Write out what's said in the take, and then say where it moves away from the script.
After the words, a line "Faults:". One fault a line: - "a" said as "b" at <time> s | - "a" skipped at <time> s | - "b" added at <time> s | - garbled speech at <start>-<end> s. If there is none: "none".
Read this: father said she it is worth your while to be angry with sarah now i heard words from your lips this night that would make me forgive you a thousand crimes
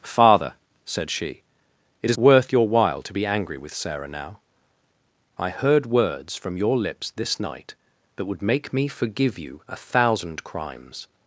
father said she it is worth your while to be angry with sarah now i heard words from your lips this night that would make me forgive you a thousand crimes
Faults:
none